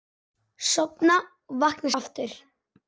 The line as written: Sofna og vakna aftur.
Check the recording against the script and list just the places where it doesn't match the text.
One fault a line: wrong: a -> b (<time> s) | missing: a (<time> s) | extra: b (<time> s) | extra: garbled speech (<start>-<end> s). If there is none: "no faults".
no faults